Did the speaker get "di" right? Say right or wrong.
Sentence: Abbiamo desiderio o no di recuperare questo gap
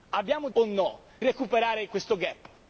wrong